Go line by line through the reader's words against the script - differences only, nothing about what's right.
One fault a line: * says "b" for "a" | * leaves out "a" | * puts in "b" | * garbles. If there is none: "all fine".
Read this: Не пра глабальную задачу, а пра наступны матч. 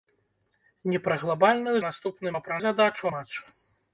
* says "наступны" for "задачу"
* says "задачу" for "наступны"